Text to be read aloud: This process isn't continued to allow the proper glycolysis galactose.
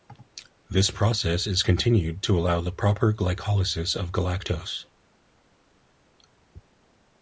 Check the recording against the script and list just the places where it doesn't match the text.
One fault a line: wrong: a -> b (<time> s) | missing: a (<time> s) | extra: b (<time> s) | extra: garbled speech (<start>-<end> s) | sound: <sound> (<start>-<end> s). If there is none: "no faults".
wrong: isn't -> is (1.5 s)
extra: of (4.0 s)